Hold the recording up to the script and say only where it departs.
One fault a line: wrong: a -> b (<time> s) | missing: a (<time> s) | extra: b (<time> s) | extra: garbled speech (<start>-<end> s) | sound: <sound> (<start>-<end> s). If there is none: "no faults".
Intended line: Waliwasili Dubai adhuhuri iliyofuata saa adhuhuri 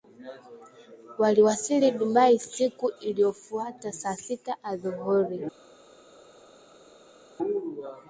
wrong: adhuhuri -> siku (2.4 s)
extra: sita (4.1 s)